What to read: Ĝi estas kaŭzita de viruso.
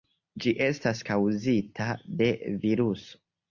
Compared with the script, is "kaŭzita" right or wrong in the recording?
right